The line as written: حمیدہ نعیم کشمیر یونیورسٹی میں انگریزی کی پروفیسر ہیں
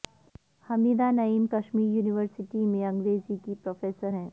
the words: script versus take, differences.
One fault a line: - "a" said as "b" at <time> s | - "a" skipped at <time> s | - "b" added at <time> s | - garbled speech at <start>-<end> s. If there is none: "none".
none